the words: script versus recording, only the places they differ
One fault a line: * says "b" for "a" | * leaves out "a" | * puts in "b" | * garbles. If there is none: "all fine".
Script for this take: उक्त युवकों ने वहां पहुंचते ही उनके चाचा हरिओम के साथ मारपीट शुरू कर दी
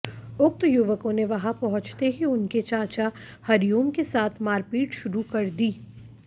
all fine